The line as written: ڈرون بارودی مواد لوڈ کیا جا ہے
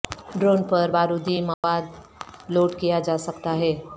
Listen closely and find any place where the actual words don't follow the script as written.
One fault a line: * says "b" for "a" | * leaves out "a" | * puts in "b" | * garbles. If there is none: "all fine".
* puts in "پر"
* puts in "سکتا"